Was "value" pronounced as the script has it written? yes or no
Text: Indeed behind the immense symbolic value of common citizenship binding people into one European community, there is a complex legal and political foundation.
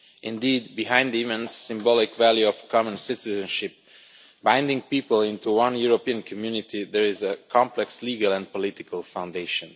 yes